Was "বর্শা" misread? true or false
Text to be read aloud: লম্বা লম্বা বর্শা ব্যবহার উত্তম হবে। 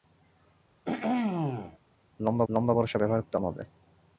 false